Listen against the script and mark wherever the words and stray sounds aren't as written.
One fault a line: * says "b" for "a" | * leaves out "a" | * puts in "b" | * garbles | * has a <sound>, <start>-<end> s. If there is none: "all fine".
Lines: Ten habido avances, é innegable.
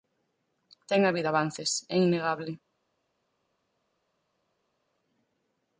all fine